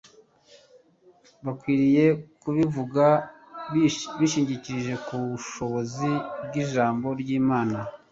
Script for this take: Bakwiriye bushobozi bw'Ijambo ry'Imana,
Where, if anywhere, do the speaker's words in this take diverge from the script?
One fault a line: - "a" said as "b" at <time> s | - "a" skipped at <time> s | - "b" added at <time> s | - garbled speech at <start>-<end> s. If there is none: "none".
- "kubivuga bishingikirije ku" added at 2.4 s